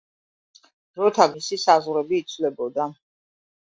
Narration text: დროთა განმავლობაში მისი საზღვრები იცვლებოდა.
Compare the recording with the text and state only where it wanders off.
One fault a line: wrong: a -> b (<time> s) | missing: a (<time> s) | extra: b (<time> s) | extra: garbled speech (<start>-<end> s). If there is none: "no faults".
missing: განმავლობაში (1.3 s)